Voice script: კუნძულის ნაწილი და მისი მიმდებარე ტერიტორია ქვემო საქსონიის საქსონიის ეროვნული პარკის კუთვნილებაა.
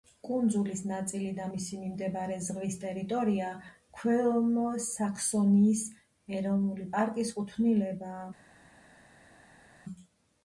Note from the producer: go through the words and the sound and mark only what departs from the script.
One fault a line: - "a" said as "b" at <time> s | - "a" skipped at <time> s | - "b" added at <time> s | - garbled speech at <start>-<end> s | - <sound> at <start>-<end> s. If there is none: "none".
- "ზღვის" added at 2.5 s
- "საქსონიის" skipped at 5.8 s